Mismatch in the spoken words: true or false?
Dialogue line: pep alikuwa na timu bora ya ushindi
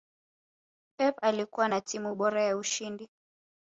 false